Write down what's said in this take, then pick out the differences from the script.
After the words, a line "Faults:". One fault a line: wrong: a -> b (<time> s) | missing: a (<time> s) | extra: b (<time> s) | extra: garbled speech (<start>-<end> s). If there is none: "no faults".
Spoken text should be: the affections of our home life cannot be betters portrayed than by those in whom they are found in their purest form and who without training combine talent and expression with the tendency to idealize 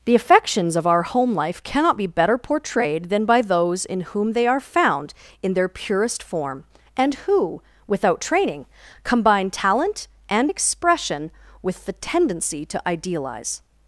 the affections of our home life cannot be better portrayed than by those in whom they are found in their purest form and who without training combine talent and expression with the tendency to idealize
Faults:
wrong: betters -> better (2.1 s)